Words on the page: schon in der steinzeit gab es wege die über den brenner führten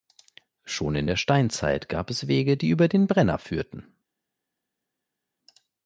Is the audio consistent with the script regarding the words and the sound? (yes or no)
yes